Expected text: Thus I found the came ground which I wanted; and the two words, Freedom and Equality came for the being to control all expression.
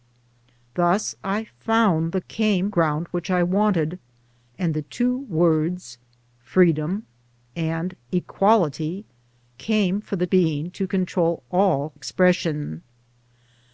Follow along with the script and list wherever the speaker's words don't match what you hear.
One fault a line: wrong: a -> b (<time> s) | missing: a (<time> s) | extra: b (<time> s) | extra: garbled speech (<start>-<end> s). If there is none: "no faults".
no faults